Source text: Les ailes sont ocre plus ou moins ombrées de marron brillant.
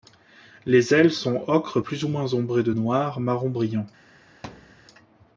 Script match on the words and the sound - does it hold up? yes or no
no